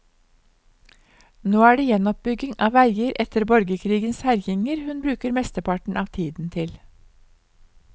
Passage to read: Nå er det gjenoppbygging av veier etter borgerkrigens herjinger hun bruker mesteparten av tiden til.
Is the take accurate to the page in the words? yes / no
yes